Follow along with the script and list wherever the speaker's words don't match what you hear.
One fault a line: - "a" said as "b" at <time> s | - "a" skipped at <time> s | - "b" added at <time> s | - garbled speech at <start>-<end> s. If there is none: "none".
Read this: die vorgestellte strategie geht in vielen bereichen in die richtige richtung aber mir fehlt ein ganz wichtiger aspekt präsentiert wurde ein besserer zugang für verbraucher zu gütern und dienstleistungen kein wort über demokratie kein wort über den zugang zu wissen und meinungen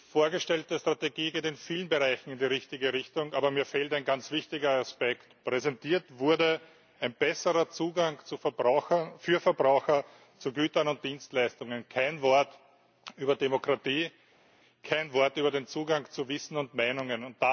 none